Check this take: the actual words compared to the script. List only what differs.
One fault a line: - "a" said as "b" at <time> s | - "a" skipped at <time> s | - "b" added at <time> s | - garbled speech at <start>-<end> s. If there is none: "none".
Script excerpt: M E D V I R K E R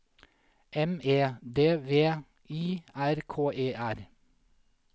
none